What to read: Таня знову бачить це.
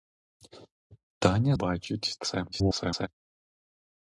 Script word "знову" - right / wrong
wrong